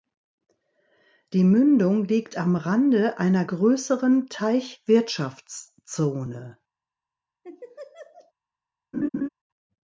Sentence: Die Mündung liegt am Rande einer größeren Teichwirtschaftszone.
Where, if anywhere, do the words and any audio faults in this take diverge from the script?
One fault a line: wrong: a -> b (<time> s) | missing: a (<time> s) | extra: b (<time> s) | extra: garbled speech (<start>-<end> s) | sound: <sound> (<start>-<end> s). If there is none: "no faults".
sound: laugh (7.4-8.3 s)
sound: laugh (8.9-9.3 s)